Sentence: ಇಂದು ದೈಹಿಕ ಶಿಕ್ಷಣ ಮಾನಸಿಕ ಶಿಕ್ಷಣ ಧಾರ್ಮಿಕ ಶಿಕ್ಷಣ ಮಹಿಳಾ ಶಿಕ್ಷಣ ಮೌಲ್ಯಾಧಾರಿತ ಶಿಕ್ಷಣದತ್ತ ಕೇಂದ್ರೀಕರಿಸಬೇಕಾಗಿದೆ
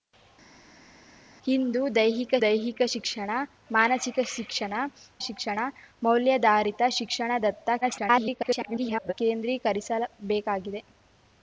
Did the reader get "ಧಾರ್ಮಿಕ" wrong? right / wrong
wrong